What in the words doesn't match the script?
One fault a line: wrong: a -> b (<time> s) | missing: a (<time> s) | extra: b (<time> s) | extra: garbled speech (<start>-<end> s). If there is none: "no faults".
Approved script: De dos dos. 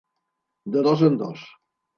extra: en (1.0 s)